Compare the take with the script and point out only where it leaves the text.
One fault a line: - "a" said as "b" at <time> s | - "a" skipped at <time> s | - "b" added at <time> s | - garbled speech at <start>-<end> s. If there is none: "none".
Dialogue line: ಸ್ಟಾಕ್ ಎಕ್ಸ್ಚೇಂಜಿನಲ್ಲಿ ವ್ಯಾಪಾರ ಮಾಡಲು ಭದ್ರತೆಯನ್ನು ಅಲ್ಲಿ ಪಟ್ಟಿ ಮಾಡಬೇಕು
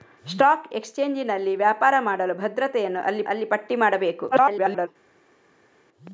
- "ಅಲ್ಲಿ" added at 3.2 s
- garbled speech at 4.3-4.9 s